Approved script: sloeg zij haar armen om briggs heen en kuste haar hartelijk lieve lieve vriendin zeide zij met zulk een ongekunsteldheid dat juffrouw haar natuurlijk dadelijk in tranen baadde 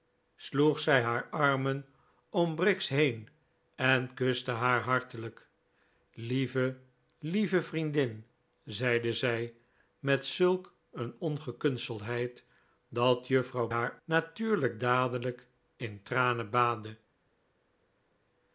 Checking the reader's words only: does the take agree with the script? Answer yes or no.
yes